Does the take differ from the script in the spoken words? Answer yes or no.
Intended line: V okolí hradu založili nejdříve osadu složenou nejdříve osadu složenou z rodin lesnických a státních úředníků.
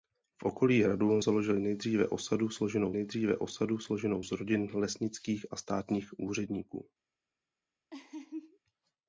no